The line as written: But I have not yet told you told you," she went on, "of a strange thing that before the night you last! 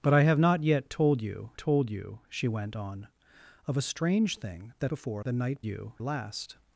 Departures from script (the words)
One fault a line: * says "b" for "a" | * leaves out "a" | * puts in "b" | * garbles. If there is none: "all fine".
all fine